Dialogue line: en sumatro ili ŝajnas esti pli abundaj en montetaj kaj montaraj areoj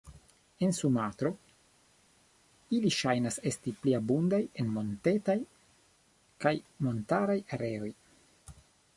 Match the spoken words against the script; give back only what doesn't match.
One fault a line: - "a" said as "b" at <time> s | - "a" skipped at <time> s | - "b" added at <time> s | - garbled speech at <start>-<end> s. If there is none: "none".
none